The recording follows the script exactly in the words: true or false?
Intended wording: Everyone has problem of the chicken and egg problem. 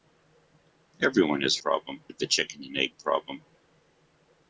true